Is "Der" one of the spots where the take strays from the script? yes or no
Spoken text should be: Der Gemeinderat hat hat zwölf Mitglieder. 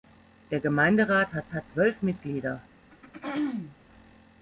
no